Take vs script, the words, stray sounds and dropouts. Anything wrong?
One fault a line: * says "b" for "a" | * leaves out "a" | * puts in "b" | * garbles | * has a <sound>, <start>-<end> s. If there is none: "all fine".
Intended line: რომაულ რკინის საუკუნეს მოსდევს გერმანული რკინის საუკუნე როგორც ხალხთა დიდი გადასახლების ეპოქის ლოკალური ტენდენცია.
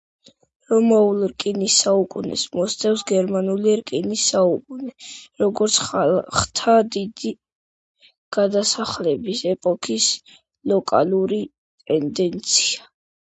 all fine